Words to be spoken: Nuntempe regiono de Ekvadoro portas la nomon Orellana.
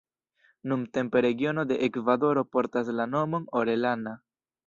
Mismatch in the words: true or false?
false